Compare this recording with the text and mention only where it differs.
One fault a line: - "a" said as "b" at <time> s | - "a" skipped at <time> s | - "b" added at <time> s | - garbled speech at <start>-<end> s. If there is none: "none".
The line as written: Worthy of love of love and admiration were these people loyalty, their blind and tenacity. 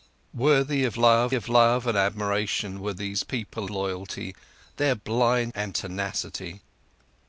none